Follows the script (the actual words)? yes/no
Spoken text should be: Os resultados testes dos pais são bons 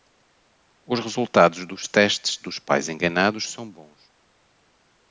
no